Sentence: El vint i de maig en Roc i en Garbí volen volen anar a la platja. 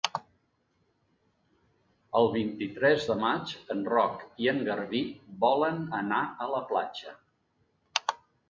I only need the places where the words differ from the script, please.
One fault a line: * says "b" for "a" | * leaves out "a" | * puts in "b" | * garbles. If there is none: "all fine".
* puts in "tres"
* leaves out "volen"